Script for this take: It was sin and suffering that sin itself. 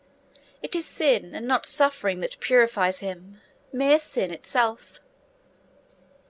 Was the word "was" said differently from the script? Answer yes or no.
yes